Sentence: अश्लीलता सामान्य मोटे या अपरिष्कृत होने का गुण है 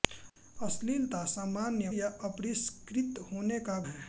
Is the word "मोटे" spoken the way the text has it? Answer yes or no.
no